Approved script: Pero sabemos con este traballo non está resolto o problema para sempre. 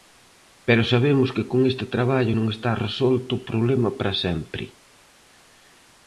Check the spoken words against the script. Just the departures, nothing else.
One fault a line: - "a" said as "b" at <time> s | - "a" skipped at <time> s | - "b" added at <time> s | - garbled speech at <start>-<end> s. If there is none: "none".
- "que" added at 1.4 s